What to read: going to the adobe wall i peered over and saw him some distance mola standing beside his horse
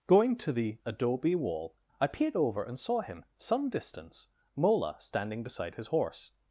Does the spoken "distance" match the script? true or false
true